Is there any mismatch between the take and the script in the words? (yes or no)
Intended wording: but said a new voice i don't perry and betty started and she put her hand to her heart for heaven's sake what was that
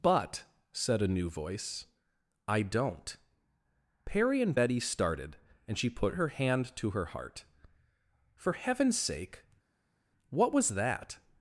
no